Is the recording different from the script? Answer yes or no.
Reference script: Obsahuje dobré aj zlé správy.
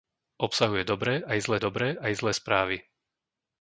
yes